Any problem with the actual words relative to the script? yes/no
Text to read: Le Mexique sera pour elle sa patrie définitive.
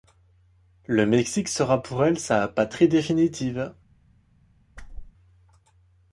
no